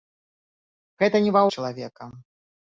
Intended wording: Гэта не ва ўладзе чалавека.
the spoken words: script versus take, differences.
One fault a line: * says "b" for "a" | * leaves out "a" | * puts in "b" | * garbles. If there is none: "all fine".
* leaves out "ўладзе"